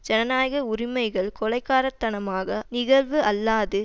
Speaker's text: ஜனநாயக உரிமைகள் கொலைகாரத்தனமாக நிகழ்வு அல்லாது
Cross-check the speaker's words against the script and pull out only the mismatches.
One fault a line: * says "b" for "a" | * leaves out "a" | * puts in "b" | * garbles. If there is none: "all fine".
all fine